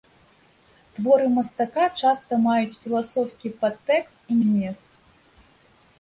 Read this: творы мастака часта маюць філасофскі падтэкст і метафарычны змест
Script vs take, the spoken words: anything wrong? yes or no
yes